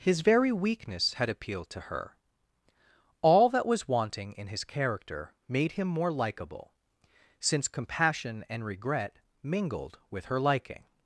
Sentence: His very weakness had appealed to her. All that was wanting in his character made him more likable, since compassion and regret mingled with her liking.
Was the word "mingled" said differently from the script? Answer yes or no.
no